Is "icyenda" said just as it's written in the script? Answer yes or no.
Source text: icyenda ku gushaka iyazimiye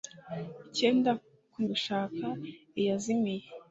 yes